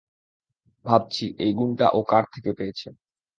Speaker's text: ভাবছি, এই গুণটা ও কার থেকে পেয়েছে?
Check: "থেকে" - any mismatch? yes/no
no